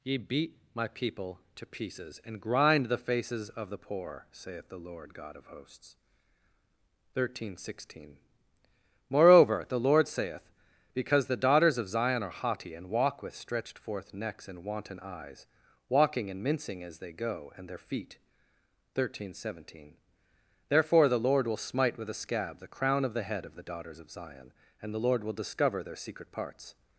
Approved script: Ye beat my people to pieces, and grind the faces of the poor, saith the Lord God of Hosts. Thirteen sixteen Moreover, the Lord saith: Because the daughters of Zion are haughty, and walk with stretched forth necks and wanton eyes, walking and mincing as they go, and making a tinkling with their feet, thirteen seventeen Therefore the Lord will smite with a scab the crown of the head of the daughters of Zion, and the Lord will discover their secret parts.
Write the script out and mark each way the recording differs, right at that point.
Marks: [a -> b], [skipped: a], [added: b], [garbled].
Ye beat my people to pieces, and grind the faces of the poor, saith the Lord God of Hosts. Thirteen sixteen Moreover, the Lord saith: Because the daughters of Zion are haughty, and walk with stretched forth necks and wanton eyes, walking and mincing as they go, and [skipped: making a tinkling with] their feet, thirteen seventeen Therefore the Lord will smite with a scab the crown of the head of the daughters of Zion, and the Lord will discover their secret parts.